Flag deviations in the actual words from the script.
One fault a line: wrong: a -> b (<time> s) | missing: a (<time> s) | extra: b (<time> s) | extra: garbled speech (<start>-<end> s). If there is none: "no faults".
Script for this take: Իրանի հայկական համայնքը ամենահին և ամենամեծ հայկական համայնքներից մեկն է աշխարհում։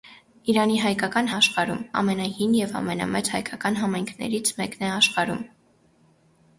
wrong: համայնքը -> աշխարհում (1.4 s)